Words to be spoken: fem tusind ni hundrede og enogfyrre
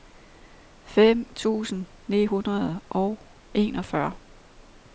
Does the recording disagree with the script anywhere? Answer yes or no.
no